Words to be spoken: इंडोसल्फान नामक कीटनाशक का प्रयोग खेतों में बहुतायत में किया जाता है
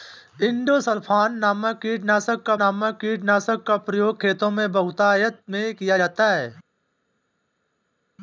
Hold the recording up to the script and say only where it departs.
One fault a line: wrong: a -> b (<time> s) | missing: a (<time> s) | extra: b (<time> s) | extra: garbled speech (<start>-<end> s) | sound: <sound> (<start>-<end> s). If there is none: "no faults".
extra: नामक कीटनाशक का (2.5 s)